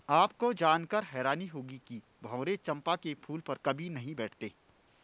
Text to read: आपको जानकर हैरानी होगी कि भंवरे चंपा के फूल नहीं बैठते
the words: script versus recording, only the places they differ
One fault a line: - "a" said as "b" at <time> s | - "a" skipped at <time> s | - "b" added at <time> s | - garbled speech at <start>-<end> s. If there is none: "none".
- "पर कभी" added at 3.4 s